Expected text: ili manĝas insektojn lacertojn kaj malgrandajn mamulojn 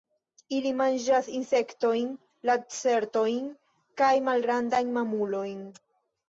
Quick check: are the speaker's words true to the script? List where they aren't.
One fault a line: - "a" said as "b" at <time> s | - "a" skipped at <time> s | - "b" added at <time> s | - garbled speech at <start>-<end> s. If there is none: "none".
none